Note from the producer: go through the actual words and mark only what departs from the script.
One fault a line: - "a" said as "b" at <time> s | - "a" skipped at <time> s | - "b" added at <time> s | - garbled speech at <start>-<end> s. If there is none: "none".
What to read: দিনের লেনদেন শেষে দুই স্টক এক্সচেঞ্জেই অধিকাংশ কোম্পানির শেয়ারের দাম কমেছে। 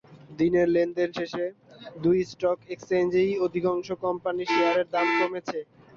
none